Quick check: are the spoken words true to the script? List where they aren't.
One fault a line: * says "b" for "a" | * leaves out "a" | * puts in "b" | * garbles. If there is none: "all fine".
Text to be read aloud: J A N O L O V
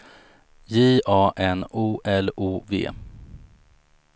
all fine